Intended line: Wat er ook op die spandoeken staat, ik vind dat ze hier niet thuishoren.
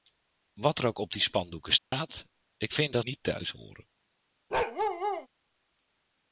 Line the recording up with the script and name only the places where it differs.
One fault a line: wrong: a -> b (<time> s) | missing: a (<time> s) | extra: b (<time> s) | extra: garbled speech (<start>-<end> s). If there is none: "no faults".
missing: ze hier (3.1 s)